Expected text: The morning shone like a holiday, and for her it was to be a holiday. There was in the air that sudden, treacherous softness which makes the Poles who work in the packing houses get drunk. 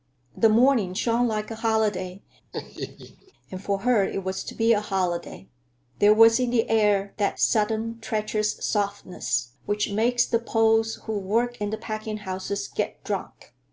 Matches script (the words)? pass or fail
pass